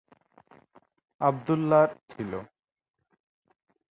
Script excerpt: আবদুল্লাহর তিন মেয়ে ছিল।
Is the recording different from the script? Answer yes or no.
yes